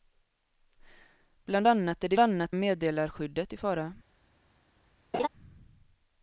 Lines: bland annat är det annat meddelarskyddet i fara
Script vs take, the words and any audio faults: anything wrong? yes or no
yes